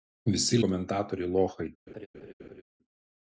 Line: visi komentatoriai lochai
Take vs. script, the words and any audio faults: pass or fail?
fail